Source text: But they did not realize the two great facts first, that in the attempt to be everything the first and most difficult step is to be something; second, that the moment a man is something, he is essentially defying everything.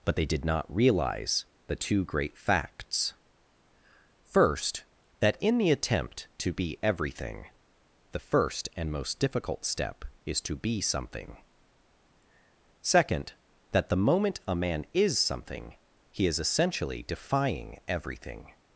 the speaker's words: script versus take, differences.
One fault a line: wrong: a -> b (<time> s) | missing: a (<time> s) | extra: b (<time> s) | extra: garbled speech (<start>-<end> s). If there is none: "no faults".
no faults